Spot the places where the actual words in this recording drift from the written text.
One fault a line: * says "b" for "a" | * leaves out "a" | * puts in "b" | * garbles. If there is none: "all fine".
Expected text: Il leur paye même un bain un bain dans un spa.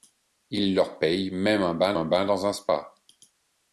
all fine